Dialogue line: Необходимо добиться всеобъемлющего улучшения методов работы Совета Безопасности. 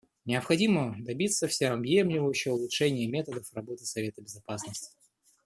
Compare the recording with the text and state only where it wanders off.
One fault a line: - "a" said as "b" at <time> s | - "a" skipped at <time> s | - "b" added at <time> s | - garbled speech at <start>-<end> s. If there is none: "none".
none